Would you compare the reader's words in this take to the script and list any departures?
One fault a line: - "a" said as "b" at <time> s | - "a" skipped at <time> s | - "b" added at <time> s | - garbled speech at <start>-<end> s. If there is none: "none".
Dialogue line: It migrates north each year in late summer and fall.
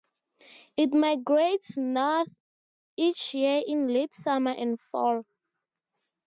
none